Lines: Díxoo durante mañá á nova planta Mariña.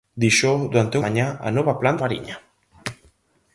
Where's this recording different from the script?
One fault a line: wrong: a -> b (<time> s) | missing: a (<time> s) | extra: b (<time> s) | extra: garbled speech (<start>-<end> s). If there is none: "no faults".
no faults